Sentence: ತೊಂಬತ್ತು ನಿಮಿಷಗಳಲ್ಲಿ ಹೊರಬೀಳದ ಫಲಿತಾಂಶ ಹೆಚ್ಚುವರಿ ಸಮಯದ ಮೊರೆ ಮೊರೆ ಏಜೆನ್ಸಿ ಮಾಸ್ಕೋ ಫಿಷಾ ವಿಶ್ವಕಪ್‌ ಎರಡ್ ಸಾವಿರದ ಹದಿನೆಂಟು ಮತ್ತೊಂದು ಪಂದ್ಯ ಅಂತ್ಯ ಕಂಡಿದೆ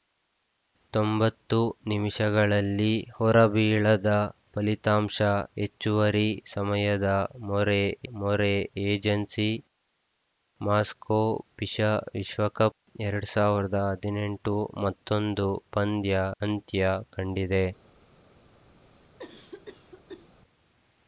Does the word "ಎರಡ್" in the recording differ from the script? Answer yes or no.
no